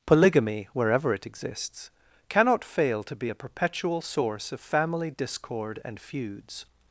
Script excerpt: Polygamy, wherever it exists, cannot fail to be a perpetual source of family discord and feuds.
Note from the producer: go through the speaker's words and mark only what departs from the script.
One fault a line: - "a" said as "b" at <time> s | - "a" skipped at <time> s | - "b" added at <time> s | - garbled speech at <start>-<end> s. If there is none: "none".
none